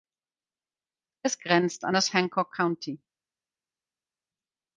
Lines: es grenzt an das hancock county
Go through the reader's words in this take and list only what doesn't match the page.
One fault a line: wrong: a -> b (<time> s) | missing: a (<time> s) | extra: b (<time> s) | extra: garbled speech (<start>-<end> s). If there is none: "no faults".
no faults